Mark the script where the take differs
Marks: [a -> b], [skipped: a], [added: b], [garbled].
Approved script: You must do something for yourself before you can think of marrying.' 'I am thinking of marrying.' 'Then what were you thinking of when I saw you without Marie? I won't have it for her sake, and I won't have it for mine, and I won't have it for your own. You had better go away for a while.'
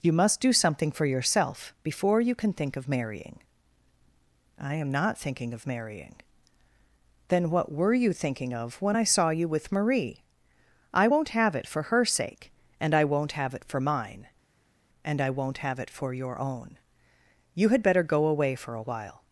You must do something for yourself before you can think of marrying.' 'I am [added: not] thinking of marrying.' 'Then what were you thinking of when I saw you [without -> with] Marie? I won't have it for her sake, and I won't have it for mine, and I won't have it for your own. You had better go away for a while.'